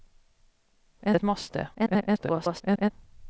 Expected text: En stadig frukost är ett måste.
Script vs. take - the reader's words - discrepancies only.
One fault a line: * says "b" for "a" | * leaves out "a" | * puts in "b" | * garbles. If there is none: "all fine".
* leaves out "stadig frukost är"
* garbles